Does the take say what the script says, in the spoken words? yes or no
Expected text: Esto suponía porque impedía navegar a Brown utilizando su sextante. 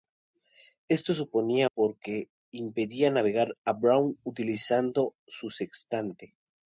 yes